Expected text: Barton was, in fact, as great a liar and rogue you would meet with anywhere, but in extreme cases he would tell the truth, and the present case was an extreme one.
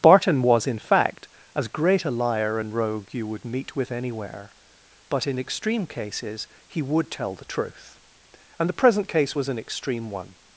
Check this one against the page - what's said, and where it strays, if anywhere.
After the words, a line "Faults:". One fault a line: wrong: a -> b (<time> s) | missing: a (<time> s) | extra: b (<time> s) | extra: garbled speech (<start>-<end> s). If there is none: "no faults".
Barton was, in fact, as great a liar and rogue you would meet with anywhere, but in extreme cases he would tell the truth, and the present case was an extreme one.
Faults:
no faults